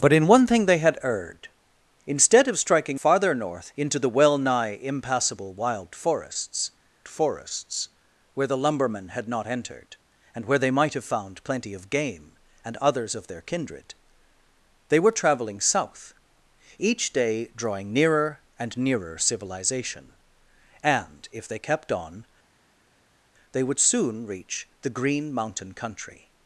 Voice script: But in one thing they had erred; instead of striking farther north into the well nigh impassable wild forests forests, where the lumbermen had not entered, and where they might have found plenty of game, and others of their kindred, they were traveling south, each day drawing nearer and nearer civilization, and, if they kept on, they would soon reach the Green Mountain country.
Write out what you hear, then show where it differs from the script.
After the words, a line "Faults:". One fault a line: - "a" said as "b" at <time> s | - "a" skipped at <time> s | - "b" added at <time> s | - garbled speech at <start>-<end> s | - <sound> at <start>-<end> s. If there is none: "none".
But in one thing they had erred; instead of striking farther north into the well nigh impassable wild forests forests, where the lumbermen had not entered, and where they might have found plenty of game, and others of their kindred, they were traveling south, each day drawing nearer and nearer civilization, and, if they kept on, they would soon reach the Green Mountain country.
Faults:
none